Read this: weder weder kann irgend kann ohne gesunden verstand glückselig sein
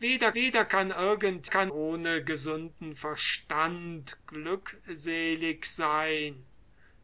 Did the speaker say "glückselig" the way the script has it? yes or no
yes